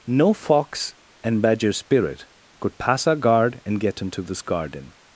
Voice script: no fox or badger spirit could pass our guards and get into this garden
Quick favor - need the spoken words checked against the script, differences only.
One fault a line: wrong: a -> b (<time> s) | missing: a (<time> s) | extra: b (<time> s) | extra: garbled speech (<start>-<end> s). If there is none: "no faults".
wrong: or -> and (1.2 s)
wrong: guards -> guard (3.1 s)